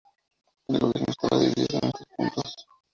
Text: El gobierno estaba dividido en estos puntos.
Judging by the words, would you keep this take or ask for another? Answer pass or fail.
pass